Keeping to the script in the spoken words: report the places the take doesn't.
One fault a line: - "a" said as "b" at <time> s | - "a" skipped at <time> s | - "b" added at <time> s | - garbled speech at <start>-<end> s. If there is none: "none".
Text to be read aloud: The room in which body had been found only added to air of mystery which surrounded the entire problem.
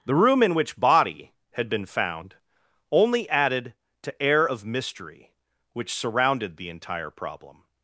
none